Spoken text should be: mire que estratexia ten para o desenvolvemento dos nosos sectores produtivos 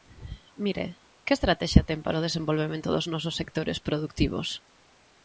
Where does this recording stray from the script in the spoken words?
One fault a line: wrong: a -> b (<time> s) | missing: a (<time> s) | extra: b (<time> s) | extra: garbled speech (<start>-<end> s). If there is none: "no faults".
no faults